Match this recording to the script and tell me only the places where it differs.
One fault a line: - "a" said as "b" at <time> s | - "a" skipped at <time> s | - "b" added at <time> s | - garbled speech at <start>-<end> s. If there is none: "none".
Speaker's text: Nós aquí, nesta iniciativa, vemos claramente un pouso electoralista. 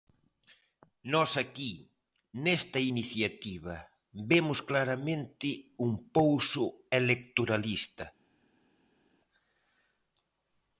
none